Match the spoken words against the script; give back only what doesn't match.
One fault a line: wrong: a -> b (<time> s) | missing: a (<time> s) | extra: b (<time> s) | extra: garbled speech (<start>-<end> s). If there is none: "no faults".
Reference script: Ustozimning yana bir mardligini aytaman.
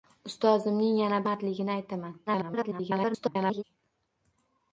missing: bir (1.2 s)
extra: garbled speech (2.3-3.6 s)